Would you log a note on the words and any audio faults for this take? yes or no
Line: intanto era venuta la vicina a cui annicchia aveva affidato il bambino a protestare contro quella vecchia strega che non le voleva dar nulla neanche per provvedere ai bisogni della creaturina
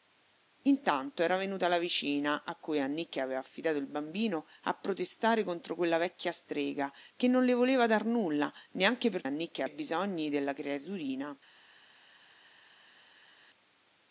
yes